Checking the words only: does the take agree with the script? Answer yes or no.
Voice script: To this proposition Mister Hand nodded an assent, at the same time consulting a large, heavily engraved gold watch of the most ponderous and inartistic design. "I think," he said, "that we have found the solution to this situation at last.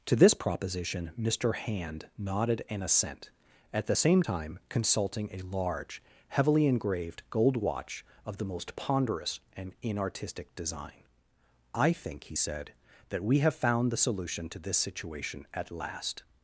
yes